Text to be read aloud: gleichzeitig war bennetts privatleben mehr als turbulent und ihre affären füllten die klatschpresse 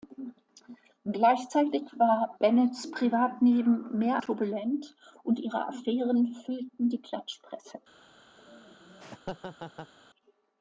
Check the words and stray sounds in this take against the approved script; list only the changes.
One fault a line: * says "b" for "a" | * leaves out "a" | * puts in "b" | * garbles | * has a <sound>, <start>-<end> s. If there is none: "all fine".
* leaves out "als"
* has a laugh, 8.4-9.9 s